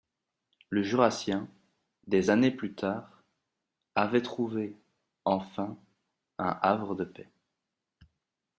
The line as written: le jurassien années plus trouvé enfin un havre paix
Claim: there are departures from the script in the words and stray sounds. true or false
true